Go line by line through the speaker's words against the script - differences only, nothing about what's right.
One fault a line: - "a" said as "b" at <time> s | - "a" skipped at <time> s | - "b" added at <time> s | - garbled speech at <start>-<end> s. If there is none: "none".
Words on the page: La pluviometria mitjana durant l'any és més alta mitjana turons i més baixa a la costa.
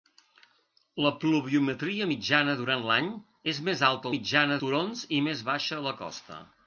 none